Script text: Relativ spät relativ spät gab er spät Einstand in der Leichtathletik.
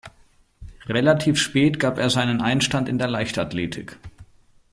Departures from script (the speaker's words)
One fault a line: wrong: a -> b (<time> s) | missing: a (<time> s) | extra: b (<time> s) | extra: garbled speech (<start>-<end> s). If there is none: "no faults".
missing: relativ spät (1.8 s)
wrong: spät -> seinen (2.1 s)